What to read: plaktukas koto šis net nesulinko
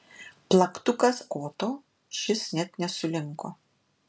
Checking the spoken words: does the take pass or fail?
pass